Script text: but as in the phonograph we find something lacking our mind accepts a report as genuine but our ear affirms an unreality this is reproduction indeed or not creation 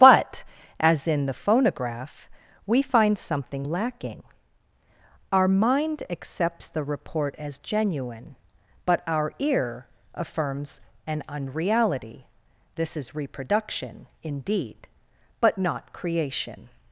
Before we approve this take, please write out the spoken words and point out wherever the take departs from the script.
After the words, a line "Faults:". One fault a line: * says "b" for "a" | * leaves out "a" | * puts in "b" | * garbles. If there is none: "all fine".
but as in the phonograph we find something lacking our mind accepts the report as genuine but our ear affirms an unreality this is reproduction indeed but not creation
Faults:
* says "the" for "a"
* says "but" for "or"